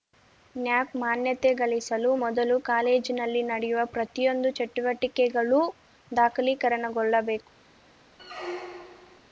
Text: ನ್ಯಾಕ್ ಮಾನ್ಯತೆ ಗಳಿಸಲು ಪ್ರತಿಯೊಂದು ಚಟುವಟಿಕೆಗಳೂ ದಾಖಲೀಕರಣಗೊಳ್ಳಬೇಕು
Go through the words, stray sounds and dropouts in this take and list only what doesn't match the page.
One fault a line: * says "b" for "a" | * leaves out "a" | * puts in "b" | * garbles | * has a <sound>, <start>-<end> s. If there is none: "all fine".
* puts in "ಮೊದಲು ಕಾಲೇಜಿನಲ್ಲಿ ನಡೆಯುವ"
* has a squeak, 8.2-9.2 s